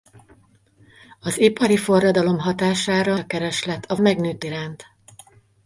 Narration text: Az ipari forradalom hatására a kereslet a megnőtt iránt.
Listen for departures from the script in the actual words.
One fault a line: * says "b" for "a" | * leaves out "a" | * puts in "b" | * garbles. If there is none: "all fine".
all fine